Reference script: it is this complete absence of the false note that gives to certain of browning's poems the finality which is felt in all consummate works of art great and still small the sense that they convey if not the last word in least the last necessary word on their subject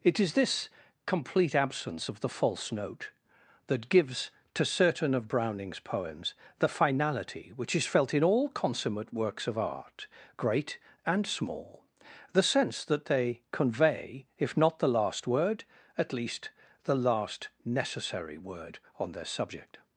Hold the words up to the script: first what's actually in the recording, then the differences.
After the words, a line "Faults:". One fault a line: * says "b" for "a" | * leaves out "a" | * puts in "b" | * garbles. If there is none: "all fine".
it is this complete absence of the false note that gives to certain of browning's poems the finality which is felt in all consummate works of art great and small the sense that they convey if not the last word at least the last necessary word on their subject
Faults:
* leaves out "still"
* says "at" for "in"